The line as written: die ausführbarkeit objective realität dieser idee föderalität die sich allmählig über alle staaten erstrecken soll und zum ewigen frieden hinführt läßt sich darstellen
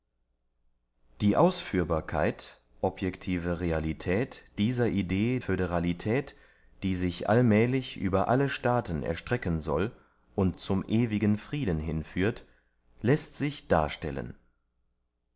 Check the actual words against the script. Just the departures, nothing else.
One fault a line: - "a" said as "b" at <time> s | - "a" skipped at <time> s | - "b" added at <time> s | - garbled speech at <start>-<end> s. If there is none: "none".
none